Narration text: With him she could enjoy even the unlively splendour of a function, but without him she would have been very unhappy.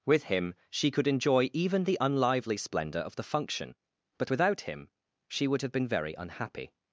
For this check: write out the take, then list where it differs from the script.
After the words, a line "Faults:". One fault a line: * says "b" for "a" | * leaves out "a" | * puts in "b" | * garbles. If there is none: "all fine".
With him she could enjoy even the unlively splendour of the function, but without him she would have been very unhappy.
Faults:
* says "the" for "a"